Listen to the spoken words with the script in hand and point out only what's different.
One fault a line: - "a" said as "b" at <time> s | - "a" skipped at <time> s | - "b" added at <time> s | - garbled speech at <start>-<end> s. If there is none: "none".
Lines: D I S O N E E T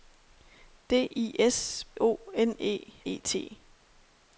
none